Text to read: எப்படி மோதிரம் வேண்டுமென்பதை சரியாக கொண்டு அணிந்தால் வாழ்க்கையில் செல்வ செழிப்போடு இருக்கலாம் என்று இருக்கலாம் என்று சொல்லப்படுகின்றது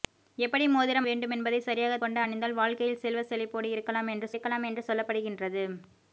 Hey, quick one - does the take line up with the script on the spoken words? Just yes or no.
yes